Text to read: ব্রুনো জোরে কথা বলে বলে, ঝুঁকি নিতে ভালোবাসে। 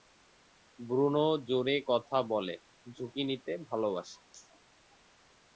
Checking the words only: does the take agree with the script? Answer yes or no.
no